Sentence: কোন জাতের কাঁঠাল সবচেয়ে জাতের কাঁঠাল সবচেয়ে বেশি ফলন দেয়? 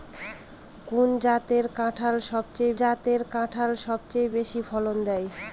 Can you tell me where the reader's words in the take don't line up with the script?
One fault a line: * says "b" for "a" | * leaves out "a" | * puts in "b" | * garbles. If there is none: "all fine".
all fine